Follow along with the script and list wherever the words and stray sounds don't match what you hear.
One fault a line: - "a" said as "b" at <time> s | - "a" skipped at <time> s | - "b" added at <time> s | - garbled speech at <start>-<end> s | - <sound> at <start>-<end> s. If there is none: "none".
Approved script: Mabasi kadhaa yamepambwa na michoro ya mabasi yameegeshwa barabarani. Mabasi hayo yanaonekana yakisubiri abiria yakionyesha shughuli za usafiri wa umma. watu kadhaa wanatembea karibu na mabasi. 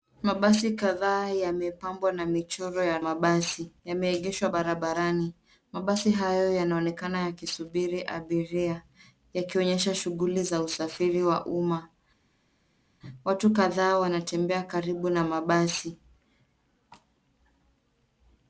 none